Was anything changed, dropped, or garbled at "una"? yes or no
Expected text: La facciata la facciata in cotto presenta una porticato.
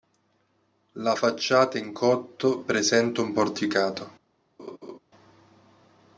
yes